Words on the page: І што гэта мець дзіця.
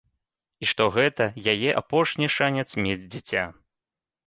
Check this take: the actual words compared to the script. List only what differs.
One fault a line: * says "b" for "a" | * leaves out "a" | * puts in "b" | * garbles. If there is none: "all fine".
* puts in "яе апошні шанец"